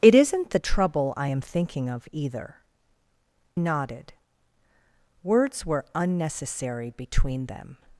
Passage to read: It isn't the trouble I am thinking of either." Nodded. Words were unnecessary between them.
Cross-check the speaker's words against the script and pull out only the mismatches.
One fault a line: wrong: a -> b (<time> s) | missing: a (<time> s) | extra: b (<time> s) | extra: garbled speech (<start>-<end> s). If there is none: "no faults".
no faults